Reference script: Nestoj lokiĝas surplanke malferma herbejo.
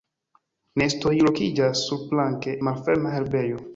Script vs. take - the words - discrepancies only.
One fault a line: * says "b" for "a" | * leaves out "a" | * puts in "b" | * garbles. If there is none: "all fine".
all fine